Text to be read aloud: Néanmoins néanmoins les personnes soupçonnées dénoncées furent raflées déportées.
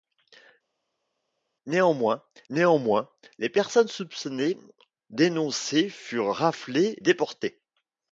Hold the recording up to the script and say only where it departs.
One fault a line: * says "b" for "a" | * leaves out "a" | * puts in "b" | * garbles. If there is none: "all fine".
all fine